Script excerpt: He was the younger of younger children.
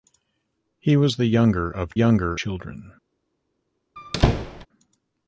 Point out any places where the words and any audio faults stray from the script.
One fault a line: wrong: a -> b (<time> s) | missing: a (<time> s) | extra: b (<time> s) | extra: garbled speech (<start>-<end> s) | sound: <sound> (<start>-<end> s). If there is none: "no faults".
sound: squeak (4.0-4.7 s)